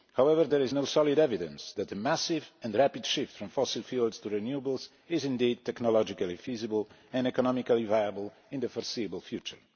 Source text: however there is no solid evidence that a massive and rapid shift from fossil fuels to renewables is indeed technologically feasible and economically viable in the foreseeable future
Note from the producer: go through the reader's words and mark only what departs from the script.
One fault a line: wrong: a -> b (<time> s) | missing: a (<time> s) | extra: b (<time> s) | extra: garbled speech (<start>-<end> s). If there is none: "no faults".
no faults